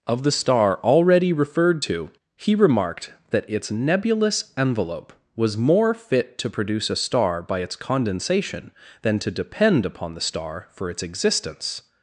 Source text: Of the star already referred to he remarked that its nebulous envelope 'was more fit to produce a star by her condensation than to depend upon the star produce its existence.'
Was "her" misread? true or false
true